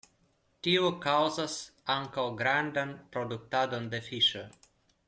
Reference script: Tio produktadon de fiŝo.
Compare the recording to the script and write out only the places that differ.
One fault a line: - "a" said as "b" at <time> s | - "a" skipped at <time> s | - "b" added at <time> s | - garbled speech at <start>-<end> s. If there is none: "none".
- "kaŭzas ankaŭ grandan" added at 1.0 s